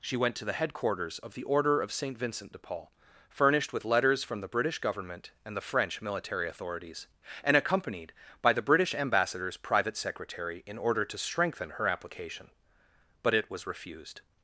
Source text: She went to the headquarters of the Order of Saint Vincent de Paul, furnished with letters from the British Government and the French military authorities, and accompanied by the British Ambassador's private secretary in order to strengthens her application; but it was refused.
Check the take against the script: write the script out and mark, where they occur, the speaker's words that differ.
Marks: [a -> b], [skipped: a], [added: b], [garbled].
She went to the headquarters of the Order of Saint Vincent de Paul, furnished with letters from the British Government and the French military authorities, and accompanied by the British Ambassador's private secretary in order to [strengthens -> strengthen] her application; but it was refused.